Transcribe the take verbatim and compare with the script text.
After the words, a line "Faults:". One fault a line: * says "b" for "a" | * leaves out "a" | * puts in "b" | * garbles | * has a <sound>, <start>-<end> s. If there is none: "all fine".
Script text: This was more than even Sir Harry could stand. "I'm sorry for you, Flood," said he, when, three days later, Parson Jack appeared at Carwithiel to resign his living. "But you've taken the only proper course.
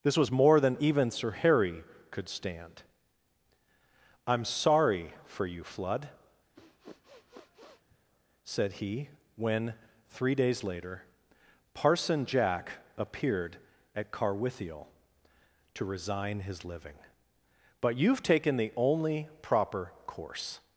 This was more than even Sir Harry could stand. "I'm sorry for you, Flood," said he, when, three days later, Parson Jack appeared at Carwithiel to resign his living. "But you've taken the only proper course.
Faults:
* has a sniff, 6.5-8.0 s